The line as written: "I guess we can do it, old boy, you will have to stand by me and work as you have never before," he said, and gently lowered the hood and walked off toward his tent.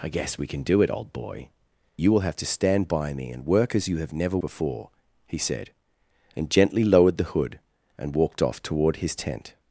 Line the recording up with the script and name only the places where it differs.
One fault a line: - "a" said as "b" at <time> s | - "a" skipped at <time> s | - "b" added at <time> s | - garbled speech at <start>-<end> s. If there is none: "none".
none